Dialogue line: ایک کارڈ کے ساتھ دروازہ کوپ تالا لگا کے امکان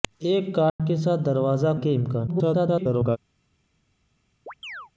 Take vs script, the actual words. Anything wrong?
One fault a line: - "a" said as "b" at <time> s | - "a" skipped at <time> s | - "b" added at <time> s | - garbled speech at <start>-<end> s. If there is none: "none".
- "کوپ تالا لگا" skipped at 1.7 s
- garbled speech at 2.3-3.2 s